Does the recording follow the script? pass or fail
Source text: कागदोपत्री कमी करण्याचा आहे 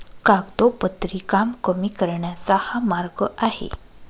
fail